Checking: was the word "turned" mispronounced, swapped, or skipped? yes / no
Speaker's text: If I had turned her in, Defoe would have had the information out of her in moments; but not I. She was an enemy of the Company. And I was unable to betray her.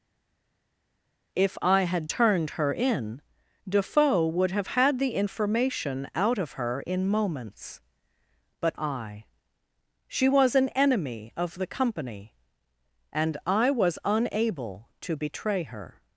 no